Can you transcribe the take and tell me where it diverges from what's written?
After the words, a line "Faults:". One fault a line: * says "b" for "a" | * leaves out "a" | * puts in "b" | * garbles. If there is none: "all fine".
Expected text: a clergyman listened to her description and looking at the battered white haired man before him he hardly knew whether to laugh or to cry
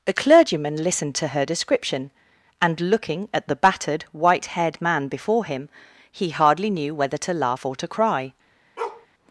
a clergyman listened to her description and looking at the battered white haired man before him he hardly knew whether to laugh or to cry
Faults:
all fine